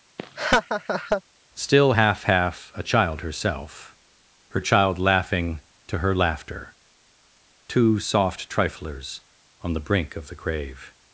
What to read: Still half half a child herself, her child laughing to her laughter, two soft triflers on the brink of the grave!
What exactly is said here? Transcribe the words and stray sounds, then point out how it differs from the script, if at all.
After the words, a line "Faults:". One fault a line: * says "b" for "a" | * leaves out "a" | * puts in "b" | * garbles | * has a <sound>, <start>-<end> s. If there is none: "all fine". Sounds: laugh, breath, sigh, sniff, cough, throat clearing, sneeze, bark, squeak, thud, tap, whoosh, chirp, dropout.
Still half half a child herself, her child laughing to her laughter, two soft triflers on the brink of the grave!
Faults:
* has a laugh, 0.2-1.2 s